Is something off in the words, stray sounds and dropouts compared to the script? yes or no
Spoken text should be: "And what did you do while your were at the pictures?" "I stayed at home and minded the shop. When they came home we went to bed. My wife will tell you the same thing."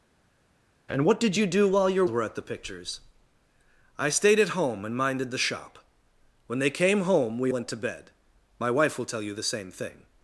no